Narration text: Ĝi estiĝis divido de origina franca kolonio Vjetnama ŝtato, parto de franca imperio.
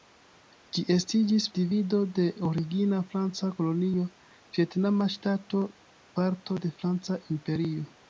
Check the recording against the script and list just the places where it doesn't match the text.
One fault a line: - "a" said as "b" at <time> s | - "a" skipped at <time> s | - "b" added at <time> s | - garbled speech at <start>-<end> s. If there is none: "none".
none